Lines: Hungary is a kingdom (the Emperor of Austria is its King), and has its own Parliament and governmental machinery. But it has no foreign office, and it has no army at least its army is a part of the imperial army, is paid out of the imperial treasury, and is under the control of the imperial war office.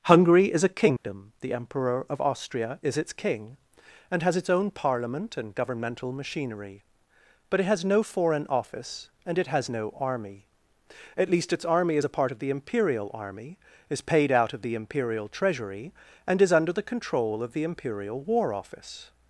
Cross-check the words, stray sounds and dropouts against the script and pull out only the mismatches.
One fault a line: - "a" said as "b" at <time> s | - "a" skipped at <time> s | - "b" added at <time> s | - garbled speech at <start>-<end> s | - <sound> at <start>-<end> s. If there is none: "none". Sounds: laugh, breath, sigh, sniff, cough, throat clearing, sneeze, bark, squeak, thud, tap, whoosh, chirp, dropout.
- dropout at 1.0-1.0 s